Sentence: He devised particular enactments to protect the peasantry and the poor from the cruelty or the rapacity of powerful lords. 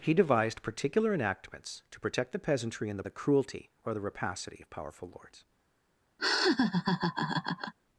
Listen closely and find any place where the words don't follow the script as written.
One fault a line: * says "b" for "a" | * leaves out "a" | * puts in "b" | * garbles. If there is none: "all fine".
* leaves out "poor from"